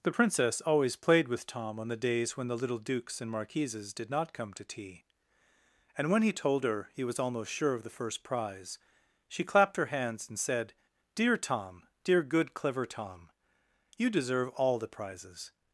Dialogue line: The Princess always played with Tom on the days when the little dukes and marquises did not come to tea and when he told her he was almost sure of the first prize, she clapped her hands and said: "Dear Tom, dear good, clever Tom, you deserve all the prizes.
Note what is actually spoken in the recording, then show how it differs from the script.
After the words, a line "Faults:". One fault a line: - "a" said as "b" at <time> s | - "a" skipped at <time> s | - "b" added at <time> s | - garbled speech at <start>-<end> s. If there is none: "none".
The Princess always played with Tom on the days when the little dukes and marquises did not come to tea and when he told her he was almost sure of the first prize, she clapped her hands and said: "Dear Tom, dear good, clever Tom, you deserve all the prizes.
Faults:
none